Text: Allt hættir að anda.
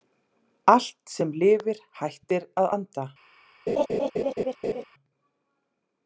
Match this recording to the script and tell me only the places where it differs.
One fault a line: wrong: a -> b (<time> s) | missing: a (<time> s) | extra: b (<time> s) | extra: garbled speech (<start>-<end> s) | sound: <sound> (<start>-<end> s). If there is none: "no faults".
extra: sem lifir (1.2 s)
sound: laugh (3.7-4.8 s)